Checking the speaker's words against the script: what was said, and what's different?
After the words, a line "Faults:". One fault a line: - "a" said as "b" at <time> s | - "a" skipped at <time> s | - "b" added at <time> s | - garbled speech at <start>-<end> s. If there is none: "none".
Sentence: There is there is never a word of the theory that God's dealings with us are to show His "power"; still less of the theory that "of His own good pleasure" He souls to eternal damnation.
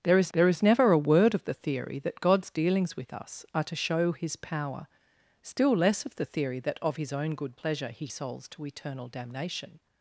There is there is never a word of the theory that God's dealings with us are to show His "power"; still less of the theory that "of His own good pleasure" He souls to eternal damnation.
Faults:
none